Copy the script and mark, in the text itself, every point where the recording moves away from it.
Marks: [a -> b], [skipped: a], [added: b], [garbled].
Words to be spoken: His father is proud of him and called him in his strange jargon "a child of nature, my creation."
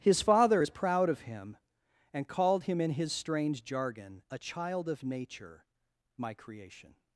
His father is proud of him and called him in his strange jargon "a child of nature, my creation."